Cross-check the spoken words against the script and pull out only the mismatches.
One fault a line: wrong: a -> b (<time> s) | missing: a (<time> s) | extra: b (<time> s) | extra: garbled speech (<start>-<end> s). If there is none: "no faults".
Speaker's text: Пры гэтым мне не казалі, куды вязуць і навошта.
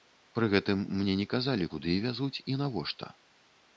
no faults